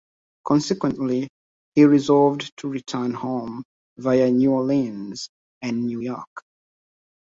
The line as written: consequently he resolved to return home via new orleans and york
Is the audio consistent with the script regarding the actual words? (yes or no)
no